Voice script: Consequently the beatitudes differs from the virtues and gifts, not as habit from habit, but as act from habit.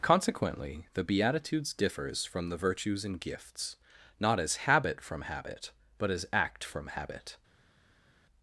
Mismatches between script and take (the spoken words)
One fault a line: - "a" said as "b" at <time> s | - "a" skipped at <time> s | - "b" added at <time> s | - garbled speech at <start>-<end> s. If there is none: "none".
none